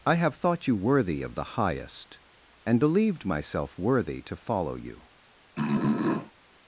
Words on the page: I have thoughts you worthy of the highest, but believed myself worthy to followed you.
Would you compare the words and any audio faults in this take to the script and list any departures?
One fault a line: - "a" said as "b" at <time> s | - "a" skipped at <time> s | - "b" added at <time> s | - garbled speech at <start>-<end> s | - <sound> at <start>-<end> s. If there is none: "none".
- "thoughts" said as "thought" at 0.3 s
- "but" said as "and" at 2.6 s
- "followed" said as "follow" at 4.3 s
- throat clearing at 5.6-6.3 s